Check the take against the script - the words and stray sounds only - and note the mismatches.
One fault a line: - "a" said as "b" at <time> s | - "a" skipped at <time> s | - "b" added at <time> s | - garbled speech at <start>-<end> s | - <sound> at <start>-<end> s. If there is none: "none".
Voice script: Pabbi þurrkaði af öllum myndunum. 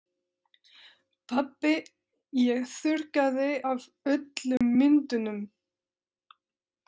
- "ég" added at 2.5 s
- dropout at 4.6-4.6 s